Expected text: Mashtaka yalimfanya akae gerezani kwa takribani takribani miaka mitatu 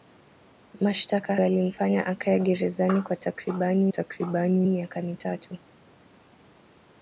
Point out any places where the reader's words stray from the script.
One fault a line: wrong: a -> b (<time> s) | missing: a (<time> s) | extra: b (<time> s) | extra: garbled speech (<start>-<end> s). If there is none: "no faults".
no faults